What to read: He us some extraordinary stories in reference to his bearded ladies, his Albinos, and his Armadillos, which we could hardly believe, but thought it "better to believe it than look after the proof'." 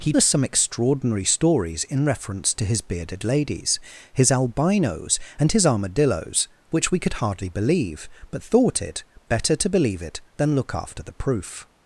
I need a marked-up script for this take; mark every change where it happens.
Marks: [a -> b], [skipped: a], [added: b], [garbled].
He us some extraordinary stories in reference to his bearded ladies, his Albinos, and his Armadillos, which we could hardly believe, but thought it "better to believe it than look after the proof'."